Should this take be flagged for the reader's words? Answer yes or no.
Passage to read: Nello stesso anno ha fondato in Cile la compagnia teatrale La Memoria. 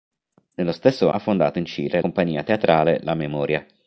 yes